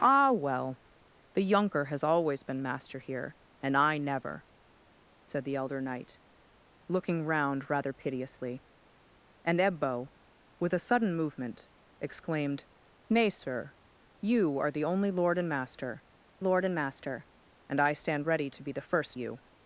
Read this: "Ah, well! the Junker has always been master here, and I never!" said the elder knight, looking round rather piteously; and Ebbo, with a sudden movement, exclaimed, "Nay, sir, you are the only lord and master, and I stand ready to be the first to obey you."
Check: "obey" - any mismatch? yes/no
yes